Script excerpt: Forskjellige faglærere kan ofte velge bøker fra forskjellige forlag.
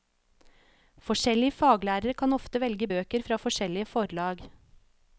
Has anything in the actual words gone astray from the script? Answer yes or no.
no